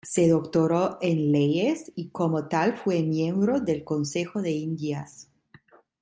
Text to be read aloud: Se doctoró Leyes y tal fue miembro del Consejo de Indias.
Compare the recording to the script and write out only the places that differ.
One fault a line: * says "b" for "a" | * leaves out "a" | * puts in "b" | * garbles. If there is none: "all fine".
* puts in "en"
* puts in "como"